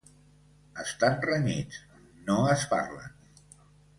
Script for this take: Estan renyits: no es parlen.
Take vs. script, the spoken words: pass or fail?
pass